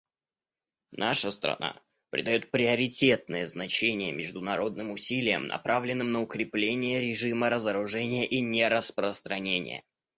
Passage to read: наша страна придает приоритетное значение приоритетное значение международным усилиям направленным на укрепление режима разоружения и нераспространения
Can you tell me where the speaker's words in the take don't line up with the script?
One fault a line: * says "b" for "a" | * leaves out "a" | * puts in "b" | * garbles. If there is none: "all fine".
* leaves out "приоритетное значение"